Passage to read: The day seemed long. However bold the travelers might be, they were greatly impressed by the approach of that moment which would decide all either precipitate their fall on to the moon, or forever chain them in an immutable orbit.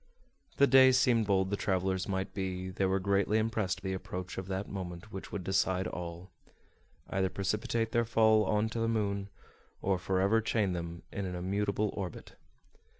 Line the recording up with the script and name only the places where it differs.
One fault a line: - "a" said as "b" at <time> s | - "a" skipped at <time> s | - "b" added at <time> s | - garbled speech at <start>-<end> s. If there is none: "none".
- "long However" skipped at 1.3 s
- "by" skipped at 3.8 s